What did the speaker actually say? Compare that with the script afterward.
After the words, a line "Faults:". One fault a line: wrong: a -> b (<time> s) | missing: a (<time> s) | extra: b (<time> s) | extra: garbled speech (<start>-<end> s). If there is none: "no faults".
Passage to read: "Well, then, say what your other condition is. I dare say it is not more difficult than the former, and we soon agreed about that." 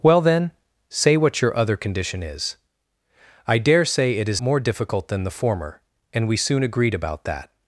"Well, then, say what your other condition is. I dare say it is more difficult than the former, and we soon agreed about that."
Faults:
missing: not (4.4 s)